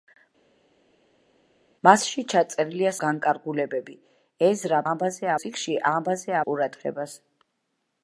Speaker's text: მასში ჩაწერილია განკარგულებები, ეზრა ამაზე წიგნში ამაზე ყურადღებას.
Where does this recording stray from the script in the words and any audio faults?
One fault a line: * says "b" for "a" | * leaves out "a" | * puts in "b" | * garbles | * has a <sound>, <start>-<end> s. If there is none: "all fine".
all fine